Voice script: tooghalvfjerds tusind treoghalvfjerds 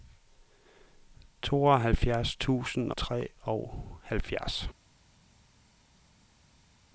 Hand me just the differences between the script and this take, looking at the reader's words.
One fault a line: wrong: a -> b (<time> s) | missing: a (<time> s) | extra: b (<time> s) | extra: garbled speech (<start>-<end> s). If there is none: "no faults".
no faults